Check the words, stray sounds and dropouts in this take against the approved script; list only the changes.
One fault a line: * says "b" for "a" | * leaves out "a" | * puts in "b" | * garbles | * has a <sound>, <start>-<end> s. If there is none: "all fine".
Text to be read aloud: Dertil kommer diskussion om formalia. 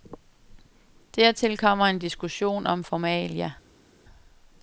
* puts in "en"